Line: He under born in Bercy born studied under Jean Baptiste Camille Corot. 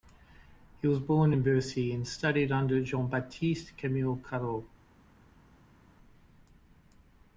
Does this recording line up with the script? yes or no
no